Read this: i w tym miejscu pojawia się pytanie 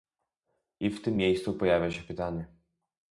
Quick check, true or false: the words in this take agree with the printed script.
true